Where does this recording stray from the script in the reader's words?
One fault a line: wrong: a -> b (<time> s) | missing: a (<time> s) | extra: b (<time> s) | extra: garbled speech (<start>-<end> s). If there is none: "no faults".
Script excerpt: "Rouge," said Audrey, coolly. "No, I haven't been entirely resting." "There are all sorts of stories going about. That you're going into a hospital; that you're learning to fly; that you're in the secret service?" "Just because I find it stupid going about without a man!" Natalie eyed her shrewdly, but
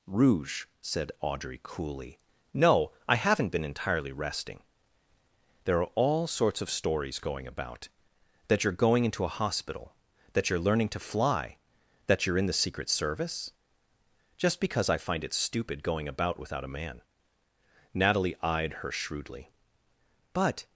no faults